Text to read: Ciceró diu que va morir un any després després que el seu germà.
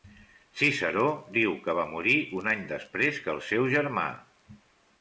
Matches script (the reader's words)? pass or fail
fail